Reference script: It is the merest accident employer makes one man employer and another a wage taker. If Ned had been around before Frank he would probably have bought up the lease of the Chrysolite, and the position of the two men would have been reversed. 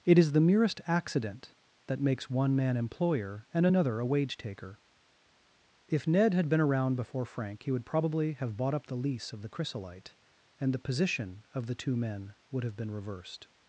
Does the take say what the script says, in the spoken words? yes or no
no